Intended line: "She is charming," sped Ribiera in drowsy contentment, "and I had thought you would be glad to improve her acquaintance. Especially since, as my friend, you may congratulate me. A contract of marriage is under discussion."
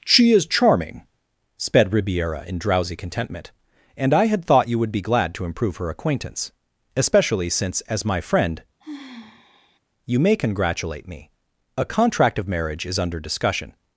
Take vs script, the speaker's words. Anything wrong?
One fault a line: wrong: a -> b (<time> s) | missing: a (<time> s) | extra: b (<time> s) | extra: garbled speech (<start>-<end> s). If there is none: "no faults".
no faults